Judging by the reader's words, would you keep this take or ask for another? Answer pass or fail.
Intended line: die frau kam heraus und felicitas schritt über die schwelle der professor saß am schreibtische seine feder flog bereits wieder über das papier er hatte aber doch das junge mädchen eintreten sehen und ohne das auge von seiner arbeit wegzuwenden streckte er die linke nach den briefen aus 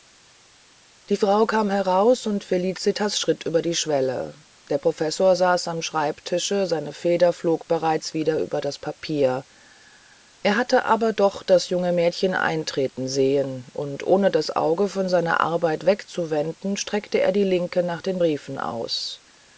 pass